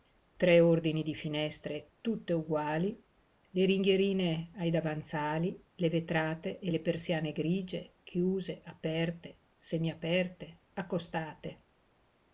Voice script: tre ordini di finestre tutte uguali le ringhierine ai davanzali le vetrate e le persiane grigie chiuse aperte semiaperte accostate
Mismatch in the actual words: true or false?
false